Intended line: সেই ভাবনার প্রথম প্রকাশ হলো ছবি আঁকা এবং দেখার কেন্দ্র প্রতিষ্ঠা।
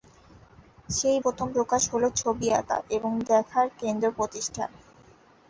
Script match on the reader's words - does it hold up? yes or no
no